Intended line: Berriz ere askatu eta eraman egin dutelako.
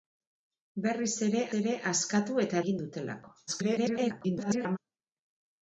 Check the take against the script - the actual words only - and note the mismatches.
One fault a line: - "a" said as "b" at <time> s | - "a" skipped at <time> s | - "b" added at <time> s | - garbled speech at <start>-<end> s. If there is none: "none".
- "ere" added at 1.6 s
- "eraman" skipped at 2.6 s
- garbled speech at 3.5-4.8 s